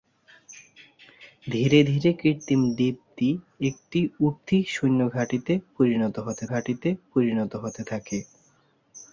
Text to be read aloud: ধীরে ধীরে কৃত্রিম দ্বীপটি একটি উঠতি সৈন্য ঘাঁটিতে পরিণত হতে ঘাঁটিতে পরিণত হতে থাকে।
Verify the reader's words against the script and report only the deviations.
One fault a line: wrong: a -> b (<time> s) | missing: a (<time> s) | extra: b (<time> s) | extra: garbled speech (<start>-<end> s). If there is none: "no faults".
no faults